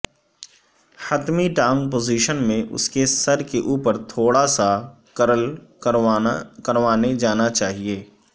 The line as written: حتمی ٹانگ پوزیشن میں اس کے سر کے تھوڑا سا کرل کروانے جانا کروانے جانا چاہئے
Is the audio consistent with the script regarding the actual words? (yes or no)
no